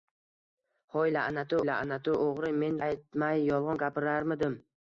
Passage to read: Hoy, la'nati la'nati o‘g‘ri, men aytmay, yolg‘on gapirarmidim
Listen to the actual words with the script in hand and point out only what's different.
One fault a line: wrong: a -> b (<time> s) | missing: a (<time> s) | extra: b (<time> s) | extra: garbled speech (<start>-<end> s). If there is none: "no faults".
no faults